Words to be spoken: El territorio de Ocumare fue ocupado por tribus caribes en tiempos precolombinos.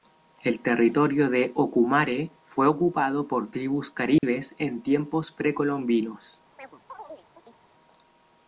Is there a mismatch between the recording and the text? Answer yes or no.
no